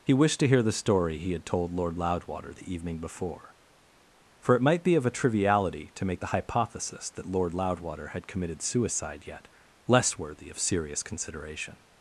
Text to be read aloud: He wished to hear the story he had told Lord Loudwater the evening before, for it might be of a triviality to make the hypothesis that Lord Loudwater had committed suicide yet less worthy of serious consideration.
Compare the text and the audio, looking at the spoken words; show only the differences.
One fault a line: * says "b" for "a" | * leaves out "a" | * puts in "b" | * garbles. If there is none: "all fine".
all fine